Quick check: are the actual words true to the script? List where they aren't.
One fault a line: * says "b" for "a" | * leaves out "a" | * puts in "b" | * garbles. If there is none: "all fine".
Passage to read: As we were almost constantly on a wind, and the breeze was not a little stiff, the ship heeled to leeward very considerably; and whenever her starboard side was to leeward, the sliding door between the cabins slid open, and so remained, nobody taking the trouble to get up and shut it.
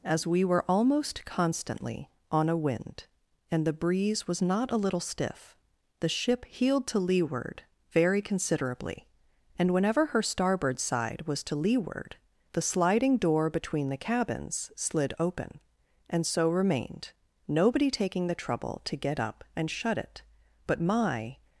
* puts in "But my"